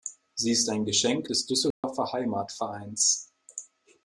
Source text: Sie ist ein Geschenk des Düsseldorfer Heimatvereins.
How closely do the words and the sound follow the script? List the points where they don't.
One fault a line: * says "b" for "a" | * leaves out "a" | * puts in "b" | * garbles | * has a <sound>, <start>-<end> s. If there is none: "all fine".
* has a dropout, 1.7-1.8 s